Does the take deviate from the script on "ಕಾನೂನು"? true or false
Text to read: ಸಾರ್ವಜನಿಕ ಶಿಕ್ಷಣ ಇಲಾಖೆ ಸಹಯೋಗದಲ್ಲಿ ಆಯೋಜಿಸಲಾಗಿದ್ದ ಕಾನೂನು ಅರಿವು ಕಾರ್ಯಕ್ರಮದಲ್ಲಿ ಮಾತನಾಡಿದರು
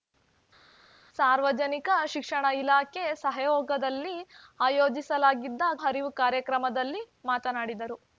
true